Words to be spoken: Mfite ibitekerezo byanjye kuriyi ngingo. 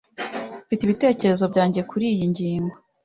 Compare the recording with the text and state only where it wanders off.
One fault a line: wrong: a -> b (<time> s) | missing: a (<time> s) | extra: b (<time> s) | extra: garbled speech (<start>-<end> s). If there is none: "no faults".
no faults